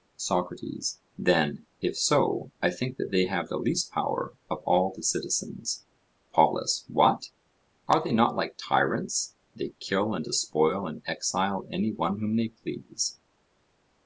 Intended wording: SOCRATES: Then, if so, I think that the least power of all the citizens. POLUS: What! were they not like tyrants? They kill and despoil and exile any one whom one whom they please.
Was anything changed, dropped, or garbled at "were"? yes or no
yes